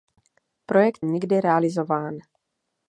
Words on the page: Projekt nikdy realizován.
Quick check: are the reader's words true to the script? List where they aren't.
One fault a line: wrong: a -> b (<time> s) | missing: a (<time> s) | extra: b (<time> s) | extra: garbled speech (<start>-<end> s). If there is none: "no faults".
no faults